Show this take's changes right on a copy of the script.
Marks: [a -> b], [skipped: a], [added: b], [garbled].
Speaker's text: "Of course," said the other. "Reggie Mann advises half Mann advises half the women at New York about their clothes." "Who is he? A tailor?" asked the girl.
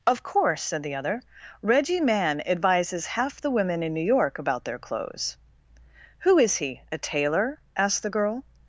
"Of course," said the other. "Reggie Mann advises half [skipped: Mann advises half] the women [at -> in] New York about their clothes." "Who is he? A tailor?" asked the girl.